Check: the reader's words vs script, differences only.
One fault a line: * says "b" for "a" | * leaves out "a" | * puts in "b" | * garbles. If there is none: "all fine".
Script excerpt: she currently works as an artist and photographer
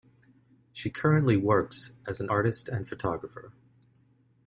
all fine